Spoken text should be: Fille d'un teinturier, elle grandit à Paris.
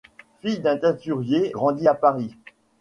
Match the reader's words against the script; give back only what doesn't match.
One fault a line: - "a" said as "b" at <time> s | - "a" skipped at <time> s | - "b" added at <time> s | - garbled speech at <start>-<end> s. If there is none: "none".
- "elle" skipped at 1.5 s